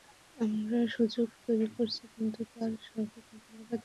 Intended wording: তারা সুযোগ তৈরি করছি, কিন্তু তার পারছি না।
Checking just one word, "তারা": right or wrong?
wrong